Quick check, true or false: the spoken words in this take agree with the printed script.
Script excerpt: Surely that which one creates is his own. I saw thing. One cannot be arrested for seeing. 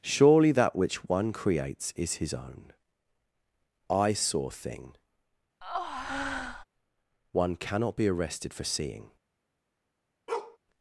true